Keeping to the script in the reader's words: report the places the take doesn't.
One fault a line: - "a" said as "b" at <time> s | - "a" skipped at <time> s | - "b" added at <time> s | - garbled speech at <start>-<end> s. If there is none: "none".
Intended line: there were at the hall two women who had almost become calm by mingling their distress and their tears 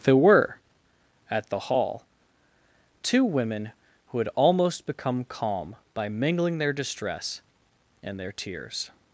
none